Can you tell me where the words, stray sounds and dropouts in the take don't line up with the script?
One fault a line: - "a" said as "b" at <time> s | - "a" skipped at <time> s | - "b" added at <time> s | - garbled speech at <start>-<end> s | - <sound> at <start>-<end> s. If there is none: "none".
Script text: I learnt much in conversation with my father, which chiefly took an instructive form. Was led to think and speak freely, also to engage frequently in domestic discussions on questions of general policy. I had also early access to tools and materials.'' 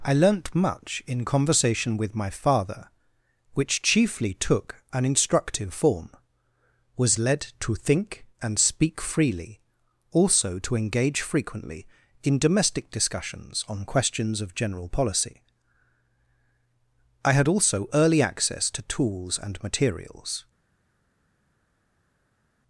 none